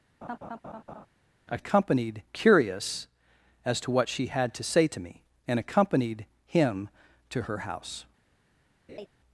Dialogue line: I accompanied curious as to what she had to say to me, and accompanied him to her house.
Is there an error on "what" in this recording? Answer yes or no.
no